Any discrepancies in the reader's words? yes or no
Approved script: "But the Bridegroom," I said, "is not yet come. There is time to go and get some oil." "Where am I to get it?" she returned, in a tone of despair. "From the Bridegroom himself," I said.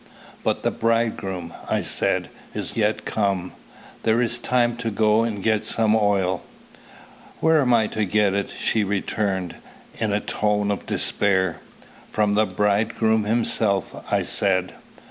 yes